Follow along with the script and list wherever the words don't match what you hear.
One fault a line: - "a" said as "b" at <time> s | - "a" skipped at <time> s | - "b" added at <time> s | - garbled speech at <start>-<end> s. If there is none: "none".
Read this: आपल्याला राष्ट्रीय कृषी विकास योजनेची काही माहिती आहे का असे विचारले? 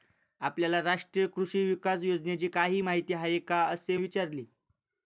none